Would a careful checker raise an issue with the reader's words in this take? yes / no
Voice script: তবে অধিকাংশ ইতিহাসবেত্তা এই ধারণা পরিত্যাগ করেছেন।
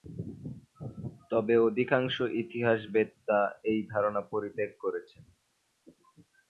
no